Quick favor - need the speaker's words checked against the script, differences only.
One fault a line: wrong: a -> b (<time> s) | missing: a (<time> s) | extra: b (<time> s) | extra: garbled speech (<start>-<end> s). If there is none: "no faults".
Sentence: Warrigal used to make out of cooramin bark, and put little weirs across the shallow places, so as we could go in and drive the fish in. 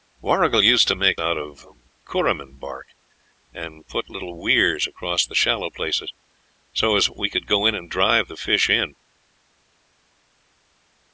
no faults